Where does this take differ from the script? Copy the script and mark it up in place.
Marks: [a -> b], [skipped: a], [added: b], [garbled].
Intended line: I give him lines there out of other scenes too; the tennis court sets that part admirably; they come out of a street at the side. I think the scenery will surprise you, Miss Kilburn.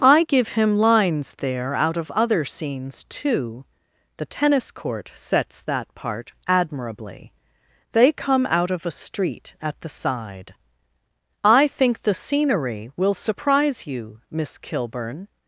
I give him lines there out of other scenes too; the tennis court sets that part admirably; they come out of a street at the side. I think the scenery will surprise you, Miss Kilburn.